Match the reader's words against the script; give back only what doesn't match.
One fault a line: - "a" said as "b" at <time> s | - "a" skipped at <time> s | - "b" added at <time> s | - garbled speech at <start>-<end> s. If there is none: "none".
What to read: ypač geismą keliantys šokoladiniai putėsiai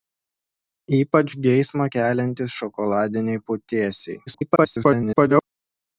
- garbled speech at 4.3-5.4 s